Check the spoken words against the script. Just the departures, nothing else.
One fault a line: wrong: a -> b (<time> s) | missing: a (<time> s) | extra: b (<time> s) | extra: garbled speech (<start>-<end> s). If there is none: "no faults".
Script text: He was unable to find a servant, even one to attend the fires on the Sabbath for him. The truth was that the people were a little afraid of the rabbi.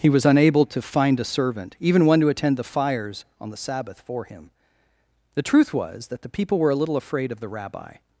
no faults